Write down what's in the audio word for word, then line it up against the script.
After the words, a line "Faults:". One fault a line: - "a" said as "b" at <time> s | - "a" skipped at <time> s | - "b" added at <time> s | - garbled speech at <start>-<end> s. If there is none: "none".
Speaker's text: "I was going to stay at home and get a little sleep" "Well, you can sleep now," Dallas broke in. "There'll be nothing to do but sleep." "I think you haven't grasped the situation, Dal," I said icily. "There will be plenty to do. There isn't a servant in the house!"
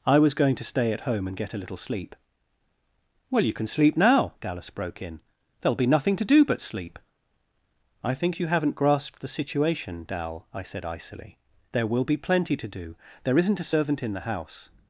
"I was going to stay at home and get a little sleep" "Well, you can sleep now," Dallas broke in. "There'll be nothing to do but sleep." "I think you haven't grasped the situation, Dal," I said icily. "There will be plenty to do. There isn't a servant in the house!"
Faults:
none